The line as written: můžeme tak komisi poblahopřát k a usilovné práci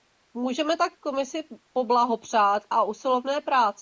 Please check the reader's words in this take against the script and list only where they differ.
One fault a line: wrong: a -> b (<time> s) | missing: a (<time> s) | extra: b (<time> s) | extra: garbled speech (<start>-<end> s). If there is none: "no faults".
no faults